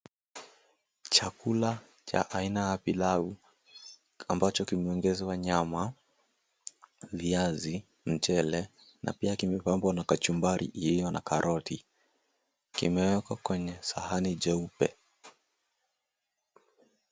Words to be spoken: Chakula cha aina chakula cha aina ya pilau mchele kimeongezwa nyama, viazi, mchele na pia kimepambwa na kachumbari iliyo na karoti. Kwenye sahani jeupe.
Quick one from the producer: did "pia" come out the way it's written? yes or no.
yes